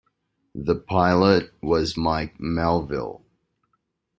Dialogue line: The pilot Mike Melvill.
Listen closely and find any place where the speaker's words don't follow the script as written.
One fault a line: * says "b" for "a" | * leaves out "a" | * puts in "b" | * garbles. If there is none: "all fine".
* puts in "was"